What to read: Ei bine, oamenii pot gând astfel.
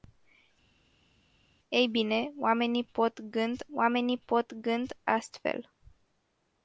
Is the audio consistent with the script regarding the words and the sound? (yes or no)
no